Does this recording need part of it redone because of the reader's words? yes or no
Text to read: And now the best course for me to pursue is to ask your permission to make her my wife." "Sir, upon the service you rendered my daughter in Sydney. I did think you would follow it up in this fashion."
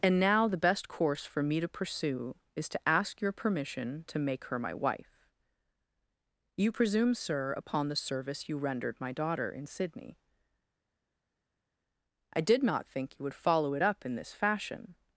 yes